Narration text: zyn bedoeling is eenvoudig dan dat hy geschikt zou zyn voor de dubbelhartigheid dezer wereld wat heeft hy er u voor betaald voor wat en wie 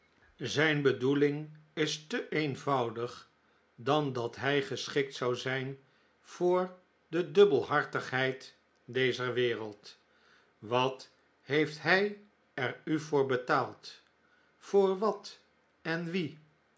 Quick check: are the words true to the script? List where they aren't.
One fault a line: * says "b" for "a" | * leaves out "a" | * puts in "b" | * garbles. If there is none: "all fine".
* puts in "te"